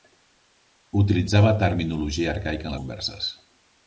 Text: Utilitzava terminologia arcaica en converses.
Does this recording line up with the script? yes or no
yes